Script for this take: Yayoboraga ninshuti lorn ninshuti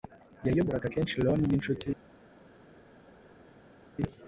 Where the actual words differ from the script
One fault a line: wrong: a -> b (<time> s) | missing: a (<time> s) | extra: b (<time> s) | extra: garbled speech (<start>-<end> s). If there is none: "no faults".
wrong: ninshuti -> kenshi (0.9 s)